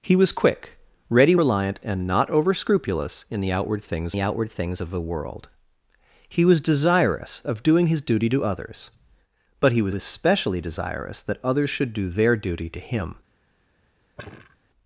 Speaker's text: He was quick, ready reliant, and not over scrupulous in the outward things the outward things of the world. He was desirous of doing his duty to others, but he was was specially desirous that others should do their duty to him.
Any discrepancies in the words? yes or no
no